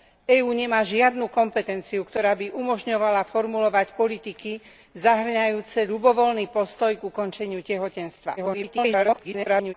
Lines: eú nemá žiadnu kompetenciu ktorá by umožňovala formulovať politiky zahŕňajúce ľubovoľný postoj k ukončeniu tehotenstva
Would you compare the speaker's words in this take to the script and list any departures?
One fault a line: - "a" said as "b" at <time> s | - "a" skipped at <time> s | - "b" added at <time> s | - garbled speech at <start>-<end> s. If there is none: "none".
- garbled speech at 8.4-9.7 s